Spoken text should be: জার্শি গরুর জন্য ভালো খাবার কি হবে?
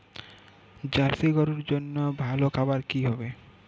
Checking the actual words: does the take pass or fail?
pass